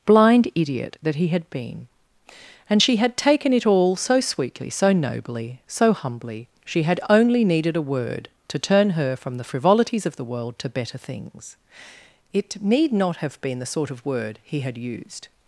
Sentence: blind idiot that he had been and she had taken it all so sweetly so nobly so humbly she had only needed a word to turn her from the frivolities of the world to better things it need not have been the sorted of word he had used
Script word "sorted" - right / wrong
wrong